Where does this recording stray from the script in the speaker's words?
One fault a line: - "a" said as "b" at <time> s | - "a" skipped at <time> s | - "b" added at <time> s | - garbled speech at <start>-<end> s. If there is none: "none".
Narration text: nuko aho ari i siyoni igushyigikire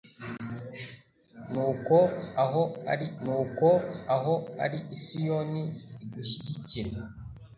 - "nuko aho ari" added at 3.2 s